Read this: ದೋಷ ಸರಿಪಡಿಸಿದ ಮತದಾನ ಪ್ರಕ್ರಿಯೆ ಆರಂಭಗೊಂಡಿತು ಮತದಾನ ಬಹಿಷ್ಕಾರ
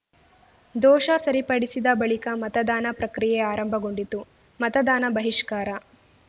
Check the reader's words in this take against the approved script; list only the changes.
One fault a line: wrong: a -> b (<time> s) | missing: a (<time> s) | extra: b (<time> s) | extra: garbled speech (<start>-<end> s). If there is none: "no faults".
extra: ಬಳಿಕ (1.9 s)